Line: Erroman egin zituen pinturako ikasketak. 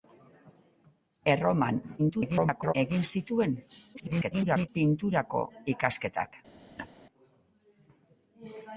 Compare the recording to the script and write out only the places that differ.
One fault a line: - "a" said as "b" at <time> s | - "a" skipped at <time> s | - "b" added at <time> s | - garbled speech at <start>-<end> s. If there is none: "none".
- garbled speech at 2.0-2.7 s
- garbled speech at 3.9-4.7 s